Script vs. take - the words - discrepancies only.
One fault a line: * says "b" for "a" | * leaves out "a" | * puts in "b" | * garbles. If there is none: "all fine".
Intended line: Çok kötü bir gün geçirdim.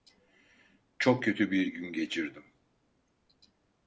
all fine